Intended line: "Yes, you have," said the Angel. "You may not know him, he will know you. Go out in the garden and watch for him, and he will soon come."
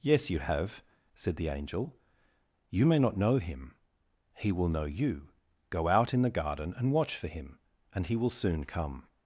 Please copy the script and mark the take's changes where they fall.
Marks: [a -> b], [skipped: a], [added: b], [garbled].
"Yes, you have," said the Angel. "You may not know him, he will know you. Go out in the garden and watch for him, and he will soon come."